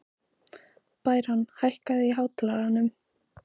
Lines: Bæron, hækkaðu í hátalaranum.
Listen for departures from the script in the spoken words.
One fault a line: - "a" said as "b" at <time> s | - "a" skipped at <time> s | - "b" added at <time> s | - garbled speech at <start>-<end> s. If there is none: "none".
none